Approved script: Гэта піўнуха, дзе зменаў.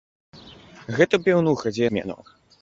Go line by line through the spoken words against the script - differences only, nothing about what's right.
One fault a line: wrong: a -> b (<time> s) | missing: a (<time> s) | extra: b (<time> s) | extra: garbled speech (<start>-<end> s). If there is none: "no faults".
no faults